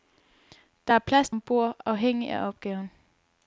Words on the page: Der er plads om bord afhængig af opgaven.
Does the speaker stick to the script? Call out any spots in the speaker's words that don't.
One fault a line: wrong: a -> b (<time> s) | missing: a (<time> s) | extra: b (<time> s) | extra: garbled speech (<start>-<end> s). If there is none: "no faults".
no faults